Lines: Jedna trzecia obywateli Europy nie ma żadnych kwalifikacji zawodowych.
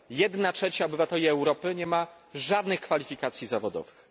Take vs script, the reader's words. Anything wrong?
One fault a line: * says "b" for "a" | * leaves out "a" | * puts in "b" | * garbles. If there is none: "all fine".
all fine